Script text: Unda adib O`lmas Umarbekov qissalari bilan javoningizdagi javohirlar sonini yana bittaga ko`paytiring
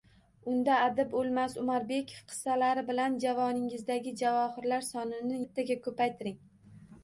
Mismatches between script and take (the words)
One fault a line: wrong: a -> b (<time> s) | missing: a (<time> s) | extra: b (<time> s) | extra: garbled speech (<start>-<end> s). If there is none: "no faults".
missing: yana (5.4 s)